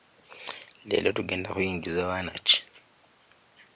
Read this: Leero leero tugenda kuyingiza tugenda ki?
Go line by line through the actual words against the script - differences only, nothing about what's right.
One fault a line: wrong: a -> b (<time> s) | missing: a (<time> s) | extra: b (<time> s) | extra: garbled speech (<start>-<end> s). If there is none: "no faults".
missing: leero (1.1 s)
wrong: tugenda -> baana (2.1 s)